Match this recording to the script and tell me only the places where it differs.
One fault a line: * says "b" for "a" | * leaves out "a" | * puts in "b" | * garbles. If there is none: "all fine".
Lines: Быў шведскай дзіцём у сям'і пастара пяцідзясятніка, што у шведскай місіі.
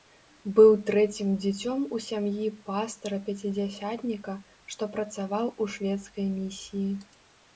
* says "трэцім" for "шведскай"
* puts in "працаваў"